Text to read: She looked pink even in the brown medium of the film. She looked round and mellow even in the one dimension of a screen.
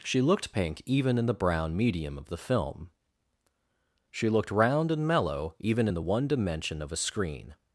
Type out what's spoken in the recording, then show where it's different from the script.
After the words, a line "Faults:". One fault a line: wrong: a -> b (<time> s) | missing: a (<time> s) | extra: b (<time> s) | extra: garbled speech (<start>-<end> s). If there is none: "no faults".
She looked pink even in the brown medium of the film. She looked round and mellow even in the one dimension of a screen.
Faults:
no faults